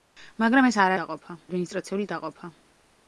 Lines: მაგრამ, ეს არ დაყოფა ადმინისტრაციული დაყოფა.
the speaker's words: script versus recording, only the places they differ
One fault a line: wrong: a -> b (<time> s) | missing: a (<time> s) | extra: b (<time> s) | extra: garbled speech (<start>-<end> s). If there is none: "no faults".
no faults